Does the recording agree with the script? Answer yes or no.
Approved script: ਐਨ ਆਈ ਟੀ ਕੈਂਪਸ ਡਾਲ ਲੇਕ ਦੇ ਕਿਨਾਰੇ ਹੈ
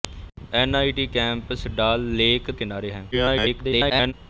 no